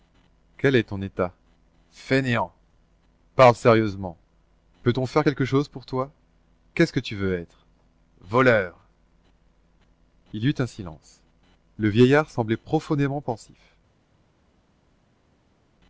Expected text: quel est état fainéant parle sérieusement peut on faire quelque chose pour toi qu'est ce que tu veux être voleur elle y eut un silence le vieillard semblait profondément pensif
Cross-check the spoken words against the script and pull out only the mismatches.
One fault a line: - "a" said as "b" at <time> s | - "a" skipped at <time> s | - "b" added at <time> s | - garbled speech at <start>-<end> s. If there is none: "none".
- "ton" added at 0.9 s
- "elle" said as "il" at 10.3 s